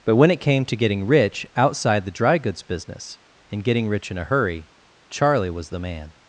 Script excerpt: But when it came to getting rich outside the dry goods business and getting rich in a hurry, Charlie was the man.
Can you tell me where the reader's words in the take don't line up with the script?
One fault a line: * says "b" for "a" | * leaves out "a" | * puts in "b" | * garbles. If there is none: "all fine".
all fine